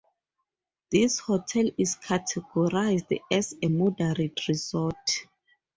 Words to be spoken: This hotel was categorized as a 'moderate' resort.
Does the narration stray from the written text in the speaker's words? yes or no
yes